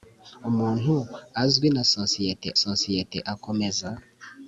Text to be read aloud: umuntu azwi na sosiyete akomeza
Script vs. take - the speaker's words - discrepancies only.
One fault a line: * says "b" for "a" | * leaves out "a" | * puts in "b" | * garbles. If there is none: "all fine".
* puts in "sosiyete"